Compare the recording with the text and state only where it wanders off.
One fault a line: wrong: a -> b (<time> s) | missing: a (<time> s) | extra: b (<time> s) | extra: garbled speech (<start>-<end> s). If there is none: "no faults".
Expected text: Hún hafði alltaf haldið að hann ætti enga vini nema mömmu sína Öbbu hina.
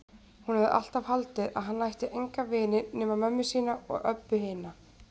extra: og (3.9 s)